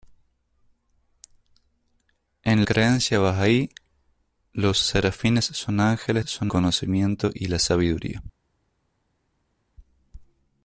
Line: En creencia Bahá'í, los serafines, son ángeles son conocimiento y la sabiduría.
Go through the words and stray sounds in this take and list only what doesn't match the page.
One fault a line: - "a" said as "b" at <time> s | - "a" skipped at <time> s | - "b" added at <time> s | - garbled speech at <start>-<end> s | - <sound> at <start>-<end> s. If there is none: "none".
none